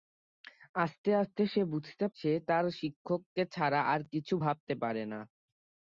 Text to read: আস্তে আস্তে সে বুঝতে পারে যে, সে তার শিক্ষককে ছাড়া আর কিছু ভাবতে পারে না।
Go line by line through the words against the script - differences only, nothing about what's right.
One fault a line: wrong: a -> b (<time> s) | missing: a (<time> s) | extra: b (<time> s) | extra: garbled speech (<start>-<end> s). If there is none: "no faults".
missing: পারে যে (2.0 s)